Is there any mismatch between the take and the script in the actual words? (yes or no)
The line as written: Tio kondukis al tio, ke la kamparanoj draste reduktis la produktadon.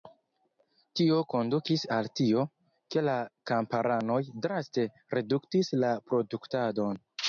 no